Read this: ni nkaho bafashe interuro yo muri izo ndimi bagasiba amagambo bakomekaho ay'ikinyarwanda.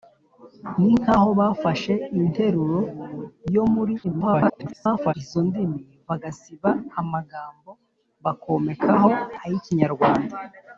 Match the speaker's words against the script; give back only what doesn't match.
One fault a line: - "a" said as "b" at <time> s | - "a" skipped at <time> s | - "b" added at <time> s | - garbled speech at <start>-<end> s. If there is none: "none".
- garbled speech at 4.0-5.1 s